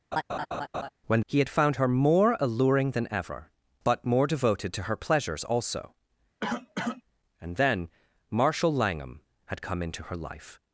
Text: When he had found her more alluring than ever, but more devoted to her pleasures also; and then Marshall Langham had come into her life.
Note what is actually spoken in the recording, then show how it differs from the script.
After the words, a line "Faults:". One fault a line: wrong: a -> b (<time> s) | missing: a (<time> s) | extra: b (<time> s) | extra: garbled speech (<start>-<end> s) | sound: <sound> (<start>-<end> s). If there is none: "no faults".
When he had found her more alluring than ever, but more devoted to her pleasures also; and then Marshall Langham had come into her life.
Faults:
sound: laugh (0.1-0.9 s)
sound: cough (6.4-7.0 s)